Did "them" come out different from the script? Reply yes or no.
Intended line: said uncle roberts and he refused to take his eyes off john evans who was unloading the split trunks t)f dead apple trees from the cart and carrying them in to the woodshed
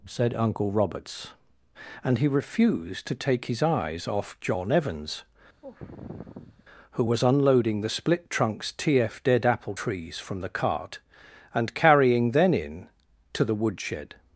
yes